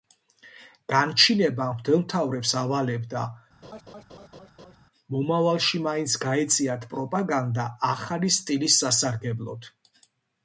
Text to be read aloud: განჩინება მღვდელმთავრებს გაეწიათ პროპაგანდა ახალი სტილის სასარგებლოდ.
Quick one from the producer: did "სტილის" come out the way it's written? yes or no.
yes